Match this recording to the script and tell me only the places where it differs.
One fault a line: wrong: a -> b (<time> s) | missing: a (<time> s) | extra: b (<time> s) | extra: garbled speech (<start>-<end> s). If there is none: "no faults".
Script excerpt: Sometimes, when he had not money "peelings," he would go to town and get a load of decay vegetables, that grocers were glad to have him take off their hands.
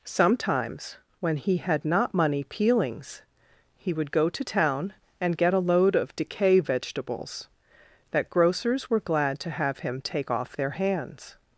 no faults